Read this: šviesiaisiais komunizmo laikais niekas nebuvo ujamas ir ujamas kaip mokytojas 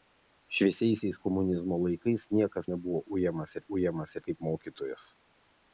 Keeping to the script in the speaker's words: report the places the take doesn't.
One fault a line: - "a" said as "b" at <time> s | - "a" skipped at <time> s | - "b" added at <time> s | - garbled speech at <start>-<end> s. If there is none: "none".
none